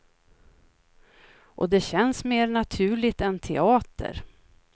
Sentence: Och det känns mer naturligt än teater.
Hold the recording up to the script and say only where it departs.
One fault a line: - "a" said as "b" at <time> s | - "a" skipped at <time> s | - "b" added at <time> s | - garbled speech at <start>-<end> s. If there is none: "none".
none